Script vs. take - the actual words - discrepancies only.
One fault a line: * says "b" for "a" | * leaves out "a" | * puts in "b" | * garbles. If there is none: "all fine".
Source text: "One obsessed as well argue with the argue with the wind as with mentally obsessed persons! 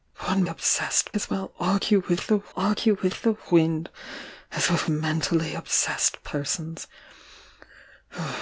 all fine